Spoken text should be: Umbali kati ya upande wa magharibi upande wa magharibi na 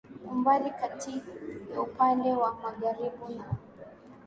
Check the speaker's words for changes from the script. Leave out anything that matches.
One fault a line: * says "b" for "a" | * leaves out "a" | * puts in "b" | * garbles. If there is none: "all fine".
* leaves out "upande wa magharibi"